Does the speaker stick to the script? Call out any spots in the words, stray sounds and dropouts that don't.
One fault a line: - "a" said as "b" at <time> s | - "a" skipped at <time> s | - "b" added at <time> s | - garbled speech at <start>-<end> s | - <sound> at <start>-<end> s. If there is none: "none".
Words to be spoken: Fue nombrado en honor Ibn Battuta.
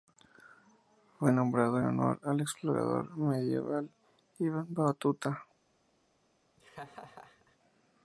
- "al explorador medieval" added at 2.2 s
- laugh at 6.6-7.6 s